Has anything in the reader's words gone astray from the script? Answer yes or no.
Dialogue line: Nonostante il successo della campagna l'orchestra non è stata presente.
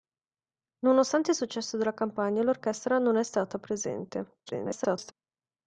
yes